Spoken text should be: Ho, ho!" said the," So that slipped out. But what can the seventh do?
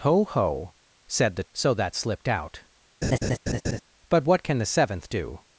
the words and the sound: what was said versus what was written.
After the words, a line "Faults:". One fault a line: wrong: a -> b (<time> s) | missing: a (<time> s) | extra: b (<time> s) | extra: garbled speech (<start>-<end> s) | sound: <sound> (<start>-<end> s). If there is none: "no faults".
Ho, ho!" said the," So that slipped out. But what can the seventh do?
Faults:
sound: laugh (3.0-3.8 s)